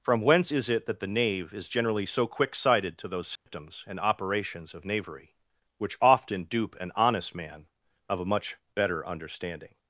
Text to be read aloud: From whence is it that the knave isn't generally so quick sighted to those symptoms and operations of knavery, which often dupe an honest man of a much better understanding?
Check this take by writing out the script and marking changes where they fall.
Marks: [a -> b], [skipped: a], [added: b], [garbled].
From whence is it that the knave [isn't -> is] generally so quick sighted to those symptoms and operations of knavery, which often dupe an honest man of a much better understanding?